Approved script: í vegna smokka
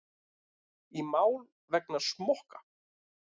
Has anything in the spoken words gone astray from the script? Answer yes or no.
yes